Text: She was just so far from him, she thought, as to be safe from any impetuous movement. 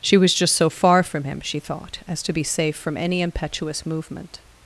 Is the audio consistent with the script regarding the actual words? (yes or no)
yes